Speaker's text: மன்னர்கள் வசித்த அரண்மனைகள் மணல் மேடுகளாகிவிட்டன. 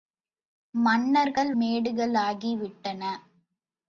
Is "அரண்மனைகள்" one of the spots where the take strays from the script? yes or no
yes